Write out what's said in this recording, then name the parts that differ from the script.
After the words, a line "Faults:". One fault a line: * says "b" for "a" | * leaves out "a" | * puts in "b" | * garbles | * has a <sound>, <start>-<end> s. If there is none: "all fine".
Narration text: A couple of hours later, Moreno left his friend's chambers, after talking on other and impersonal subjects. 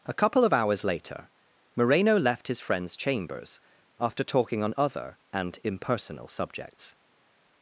A couple of hours later, Moreno left his friend's chambers, after talking on other and impersonal subjects.
Faults:
all fine